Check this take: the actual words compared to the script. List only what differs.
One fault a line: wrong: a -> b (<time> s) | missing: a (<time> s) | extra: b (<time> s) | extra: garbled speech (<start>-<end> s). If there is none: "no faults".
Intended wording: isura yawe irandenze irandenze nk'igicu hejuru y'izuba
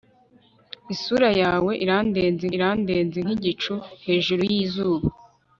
no faults